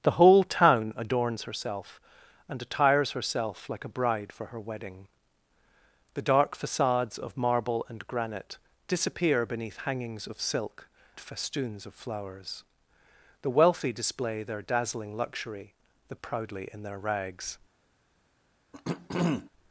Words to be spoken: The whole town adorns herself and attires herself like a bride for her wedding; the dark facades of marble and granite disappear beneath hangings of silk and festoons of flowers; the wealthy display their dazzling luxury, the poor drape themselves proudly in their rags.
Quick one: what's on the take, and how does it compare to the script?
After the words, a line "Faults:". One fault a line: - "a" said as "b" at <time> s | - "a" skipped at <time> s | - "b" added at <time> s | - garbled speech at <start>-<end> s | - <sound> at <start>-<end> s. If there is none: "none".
The whole town adorns herself and attires herself like a bride for her wedding; the dark facades of marble and granite disappear beneath hangings of silk festoons of flowers; the wealthy display their dazzling luxury, the proudly in their rags.
Faults:
- "and" skipped at 10.9 s
- "poor drape themselves" skipped at 16.2 s
- throat clearing at 18.7-19.5 s